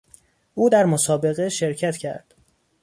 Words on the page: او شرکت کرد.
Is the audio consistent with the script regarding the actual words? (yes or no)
no